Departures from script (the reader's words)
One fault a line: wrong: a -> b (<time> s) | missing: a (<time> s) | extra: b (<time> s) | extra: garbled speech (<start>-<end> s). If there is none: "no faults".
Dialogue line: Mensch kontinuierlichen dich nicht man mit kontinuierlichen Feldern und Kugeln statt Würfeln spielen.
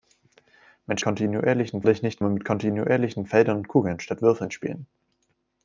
no faults